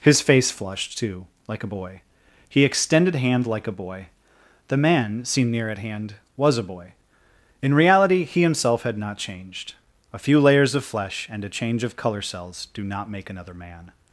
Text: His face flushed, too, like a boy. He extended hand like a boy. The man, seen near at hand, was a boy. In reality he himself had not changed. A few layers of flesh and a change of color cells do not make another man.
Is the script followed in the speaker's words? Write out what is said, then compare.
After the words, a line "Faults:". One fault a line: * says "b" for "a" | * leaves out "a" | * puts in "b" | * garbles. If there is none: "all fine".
His face flushed, too, like a boy. He extended hand like a boy. The man, seen near at hand, was a boy. In reality he himself had not changed. A few layers of flesh and a change of color cells do not make another man.
Faults:
all fine